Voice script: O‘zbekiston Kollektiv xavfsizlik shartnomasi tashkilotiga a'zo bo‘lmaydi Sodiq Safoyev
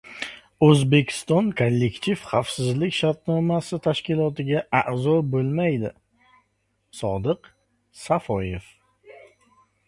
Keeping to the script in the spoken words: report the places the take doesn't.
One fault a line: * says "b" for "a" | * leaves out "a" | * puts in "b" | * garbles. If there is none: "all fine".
all fine